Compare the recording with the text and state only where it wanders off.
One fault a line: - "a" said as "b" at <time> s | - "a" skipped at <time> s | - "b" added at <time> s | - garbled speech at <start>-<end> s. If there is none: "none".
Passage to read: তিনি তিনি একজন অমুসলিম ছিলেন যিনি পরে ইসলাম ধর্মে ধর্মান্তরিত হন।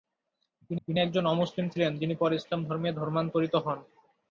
none